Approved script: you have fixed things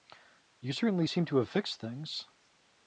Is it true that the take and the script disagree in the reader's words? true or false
true